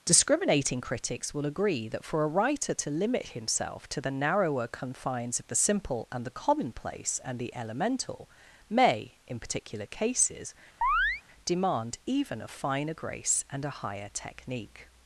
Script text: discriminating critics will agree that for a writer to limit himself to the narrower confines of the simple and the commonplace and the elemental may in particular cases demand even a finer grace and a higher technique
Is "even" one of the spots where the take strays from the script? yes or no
no